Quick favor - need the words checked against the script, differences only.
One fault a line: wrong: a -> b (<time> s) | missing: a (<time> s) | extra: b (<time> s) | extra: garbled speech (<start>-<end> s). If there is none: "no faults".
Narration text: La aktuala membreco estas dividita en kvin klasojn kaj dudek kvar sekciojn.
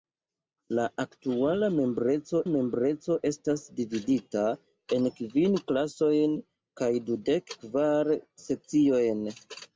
extra: membreco (2.5 s)